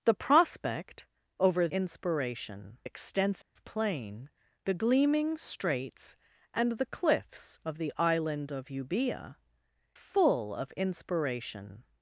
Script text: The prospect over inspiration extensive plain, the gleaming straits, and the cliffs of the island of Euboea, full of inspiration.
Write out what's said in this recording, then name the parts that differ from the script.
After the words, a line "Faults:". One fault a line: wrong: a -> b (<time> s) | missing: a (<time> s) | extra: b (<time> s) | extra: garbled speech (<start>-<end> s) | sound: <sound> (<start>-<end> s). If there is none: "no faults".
The prospect over inspiration extensive plain, the gleaming straits, and the cliffs of the island of Euboea, full of inspiration.
Faults:
sound: dropout (3.4-3.6 s)